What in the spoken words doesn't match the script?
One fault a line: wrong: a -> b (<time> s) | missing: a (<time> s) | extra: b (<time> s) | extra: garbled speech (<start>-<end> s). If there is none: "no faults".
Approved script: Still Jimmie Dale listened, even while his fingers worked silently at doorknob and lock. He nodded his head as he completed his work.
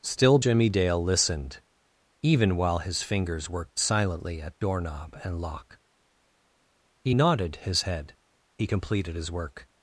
missing: as (8.1 s)